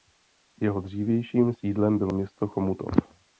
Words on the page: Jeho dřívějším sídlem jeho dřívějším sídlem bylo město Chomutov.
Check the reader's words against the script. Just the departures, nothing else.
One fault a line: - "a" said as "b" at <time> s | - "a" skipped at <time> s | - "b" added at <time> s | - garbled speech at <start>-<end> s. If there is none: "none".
- "jeho dřívějším sídlem" skipped at 2.0 s